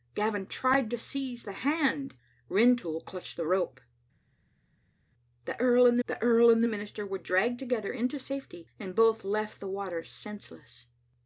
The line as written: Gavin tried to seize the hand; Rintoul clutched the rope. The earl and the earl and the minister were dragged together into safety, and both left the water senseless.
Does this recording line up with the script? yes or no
yes